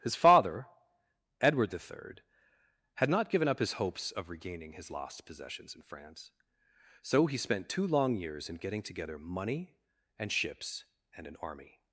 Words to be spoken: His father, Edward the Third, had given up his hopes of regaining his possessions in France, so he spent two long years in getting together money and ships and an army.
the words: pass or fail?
fail